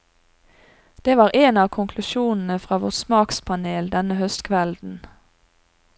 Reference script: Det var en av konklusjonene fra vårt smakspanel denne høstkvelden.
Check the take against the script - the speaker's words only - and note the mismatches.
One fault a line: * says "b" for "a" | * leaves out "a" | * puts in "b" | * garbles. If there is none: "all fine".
all fine